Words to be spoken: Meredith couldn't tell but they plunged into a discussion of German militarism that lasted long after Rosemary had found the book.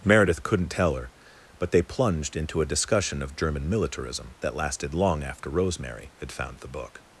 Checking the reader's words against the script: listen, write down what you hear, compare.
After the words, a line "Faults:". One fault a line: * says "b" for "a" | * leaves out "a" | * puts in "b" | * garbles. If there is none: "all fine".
Meredith couldn't tell her, but they plunged into a discussion of German militarism that lasted long after Rosemary had found the book.
Faults:
* puts in "her"